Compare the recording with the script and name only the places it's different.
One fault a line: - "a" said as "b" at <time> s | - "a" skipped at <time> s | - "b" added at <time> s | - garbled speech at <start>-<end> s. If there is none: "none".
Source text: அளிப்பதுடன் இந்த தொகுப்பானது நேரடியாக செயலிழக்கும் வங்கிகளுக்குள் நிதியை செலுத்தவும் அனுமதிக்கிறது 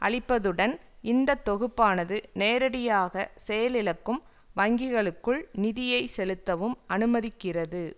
none